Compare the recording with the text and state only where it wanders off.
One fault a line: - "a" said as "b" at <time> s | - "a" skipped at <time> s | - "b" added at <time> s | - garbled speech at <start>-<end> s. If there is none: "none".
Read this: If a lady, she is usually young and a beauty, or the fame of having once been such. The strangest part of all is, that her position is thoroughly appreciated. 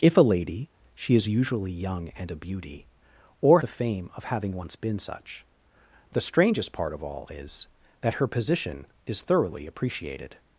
none